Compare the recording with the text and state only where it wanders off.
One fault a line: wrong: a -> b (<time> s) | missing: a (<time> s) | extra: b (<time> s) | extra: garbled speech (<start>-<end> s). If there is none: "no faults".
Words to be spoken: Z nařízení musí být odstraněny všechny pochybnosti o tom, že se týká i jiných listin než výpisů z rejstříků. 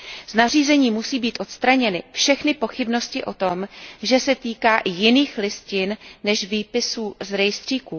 no faults